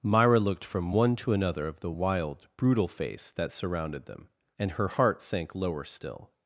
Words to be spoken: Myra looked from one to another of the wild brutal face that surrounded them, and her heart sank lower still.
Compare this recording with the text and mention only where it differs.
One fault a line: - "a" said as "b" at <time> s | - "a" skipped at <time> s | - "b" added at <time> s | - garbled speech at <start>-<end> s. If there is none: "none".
none